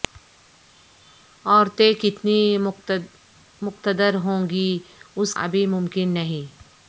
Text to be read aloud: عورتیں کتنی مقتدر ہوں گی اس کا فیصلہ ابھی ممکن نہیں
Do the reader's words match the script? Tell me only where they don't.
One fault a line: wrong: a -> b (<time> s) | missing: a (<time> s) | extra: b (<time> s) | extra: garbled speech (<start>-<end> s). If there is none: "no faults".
missing: کا فیصلہ (5.3 s)